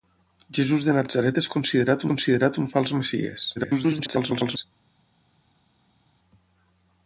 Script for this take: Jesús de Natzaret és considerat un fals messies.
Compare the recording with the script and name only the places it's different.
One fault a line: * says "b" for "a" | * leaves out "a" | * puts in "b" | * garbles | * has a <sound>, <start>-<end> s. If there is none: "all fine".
* puts in "considerat"
* garbles